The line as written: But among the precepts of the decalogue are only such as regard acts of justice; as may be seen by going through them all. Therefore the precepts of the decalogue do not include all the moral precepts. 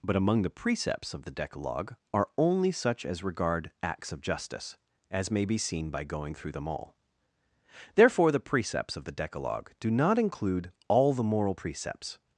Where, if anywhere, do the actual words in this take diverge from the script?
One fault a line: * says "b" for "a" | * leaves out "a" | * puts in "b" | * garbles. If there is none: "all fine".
all fine